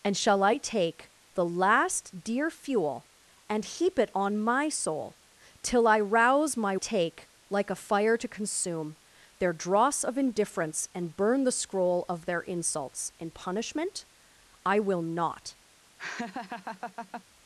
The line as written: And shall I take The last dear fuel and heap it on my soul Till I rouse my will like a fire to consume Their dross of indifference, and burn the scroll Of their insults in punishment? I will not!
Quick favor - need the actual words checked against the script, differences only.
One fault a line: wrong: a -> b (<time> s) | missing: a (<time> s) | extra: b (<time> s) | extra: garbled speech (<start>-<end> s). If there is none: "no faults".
wrong: will -> take (6.8 s)